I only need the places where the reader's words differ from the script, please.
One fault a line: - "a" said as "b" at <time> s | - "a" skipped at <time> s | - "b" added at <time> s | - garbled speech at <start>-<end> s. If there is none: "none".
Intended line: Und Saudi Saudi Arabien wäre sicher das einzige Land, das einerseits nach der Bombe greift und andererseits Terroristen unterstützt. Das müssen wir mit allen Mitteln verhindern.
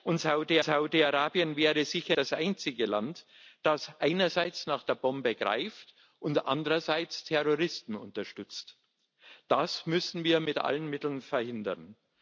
none